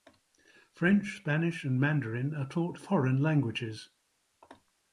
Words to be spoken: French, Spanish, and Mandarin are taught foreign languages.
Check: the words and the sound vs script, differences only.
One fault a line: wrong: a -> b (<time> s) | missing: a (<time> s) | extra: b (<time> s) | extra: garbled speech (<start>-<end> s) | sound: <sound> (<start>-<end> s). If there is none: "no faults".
no faults